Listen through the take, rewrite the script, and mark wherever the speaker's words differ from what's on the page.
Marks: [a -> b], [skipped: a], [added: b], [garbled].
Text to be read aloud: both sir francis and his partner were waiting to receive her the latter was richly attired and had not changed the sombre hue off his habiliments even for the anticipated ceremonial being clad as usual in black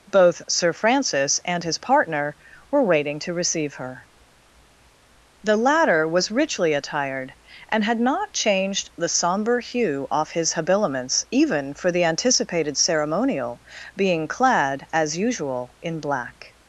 both sir francis and his partner were waiting to receive her the latter was richly attired and had not changed the sombre hue off his habiliments even for the anticipated ceremonial being clad as usual in black